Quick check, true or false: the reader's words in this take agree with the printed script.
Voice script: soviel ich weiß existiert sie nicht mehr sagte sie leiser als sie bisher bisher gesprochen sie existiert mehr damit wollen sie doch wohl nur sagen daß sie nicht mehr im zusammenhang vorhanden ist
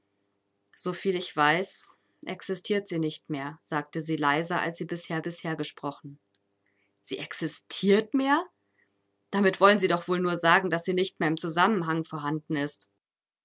true